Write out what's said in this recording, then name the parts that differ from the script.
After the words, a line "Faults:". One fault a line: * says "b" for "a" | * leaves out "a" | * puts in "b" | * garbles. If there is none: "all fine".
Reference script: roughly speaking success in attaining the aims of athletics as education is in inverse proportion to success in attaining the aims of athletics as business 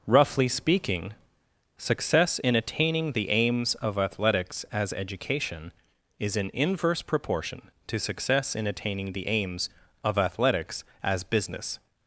roughly speaking success in attaining the aims of athletics as education is in inverse proportion to success in attaining the aims of athletics as business
Faults:
all fine